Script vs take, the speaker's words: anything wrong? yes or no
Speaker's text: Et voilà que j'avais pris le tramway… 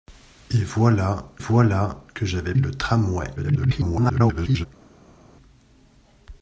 yes